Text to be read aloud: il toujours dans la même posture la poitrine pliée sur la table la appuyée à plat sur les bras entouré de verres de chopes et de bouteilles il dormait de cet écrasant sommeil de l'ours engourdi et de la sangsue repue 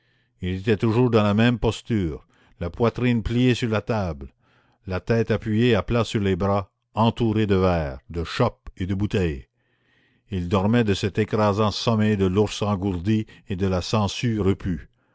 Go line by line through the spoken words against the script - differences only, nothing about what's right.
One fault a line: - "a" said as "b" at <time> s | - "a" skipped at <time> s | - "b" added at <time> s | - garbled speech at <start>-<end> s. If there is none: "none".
- "était" added at 0.6 s
- "tête" added at 5.0 s